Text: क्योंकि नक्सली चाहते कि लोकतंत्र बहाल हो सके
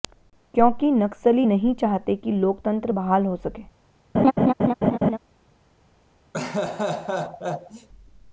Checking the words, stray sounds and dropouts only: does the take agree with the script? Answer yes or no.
no